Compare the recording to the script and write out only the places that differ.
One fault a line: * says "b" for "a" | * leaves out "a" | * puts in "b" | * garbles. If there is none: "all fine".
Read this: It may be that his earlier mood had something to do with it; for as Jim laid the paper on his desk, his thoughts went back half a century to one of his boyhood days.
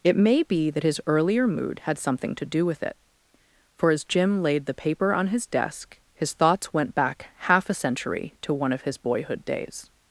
all fine